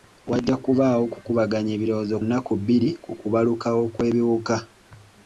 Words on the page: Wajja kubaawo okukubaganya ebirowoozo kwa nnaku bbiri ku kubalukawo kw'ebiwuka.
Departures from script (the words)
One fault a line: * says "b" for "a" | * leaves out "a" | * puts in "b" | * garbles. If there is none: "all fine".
* leaves out "kwa"